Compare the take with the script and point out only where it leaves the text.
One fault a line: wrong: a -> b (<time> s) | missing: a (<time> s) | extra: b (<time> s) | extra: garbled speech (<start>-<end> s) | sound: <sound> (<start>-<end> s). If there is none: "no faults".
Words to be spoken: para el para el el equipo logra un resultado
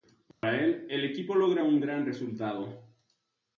sound: dropout (0.3-0.4 s)
missing: para (0.9 s)
missing: el (1.0 s)
extra: gran (1.8 s)